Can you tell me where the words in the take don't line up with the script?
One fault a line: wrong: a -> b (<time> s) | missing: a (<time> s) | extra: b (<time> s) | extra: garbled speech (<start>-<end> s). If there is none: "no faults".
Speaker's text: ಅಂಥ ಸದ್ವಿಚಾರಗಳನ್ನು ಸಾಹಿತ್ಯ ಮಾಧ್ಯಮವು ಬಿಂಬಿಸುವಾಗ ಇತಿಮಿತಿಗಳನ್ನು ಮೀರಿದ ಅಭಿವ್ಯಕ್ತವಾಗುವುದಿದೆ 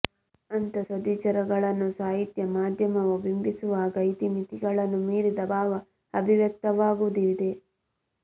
extra: ಭಾವ (5.5 s)